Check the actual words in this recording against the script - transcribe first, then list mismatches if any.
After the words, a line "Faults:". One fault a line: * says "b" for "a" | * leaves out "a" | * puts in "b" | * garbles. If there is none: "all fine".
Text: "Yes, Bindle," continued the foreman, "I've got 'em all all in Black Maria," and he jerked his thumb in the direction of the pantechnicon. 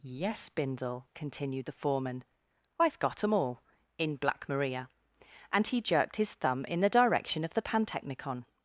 "Yes, Bindle," continued the foreman, "I've got 'em all in Black Maria," and he jerked his thumb in the direction of the pantechnicon.
Faults:
* leaves out "all"